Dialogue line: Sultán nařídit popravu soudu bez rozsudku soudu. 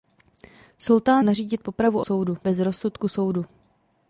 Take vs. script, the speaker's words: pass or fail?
pass